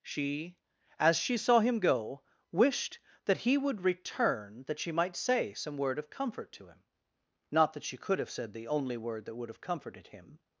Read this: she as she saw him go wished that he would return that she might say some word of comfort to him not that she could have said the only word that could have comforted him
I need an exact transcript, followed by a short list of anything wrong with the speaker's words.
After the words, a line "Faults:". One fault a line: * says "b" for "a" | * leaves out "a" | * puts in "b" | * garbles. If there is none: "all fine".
she as she saw him go wished that he would return that she might say some word of comfort to him not that she could have said the only word that would have comforted him
Faults:
* says "would" for "could"